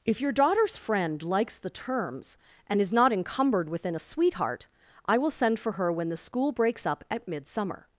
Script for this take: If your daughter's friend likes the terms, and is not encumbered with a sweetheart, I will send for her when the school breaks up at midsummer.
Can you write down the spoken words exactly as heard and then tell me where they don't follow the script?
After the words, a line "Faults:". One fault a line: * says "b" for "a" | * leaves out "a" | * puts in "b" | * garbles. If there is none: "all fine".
If your daughter's friend likes the terms, and is not encumbered within a sweetheart, I will send for her when the school breaks up at midsummer.
Faults:
* says "within" for "with"